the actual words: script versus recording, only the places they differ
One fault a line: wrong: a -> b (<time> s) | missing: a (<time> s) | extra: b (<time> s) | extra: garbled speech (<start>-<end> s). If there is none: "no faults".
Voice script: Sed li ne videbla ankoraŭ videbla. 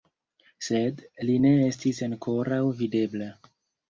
wrong: videbla -> estis (1.7 s)